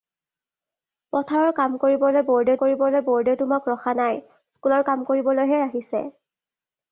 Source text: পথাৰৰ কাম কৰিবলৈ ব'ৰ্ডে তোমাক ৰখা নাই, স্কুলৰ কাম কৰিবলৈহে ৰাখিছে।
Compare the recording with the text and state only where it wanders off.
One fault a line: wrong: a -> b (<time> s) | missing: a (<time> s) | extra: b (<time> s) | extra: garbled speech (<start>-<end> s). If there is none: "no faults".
extra: কৰিবলৈ ব'ৰ্ডে (2.6 s)